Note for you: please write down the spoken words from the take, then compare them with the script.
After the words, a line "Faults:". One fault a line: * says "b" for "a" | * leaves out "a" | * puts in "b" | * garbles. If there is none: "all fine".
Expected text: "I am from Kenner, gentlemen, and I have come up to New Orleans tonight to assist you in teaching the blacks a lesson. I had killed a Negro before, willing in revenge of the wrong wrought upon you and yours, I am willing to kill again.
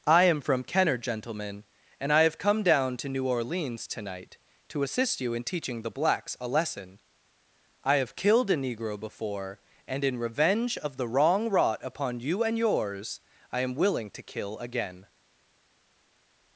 "I am from Kenner, gentlemen, and I have come down to New Orleans tonight to assist you in teaching the blacks a lesson. I have killed a Negro before, and in revenge of the wrong wrought upon you and yours, I am willing to kill again.
Faults:
* says "down" for "up"
* says "have" for "had"
* says "and" for "willing"